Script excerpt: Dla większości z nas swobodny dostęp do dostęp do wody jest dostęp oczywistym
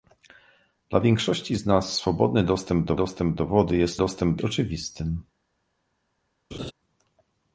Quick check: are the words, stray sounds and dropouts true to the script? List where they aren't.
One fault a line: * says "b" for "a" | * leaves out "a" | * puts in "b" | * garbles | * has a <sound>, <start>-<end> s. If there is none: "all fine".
* has a laugh, 6.5-6.7 s